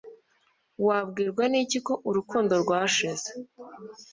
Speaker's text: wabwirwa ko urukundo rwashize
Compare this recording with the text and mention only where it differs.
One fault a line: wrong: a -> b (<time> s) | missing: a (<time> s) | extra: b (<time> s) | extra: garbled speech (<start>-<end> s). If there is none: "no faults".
extra: n'iki (1.5 s)